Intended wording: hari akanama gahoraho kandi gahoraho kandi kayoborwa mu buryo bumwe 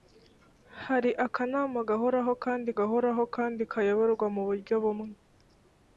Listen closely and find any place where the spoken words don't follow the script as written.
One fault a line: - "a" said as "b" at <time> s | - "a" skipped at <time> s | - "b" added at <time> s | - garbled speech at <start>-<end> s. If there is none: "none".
none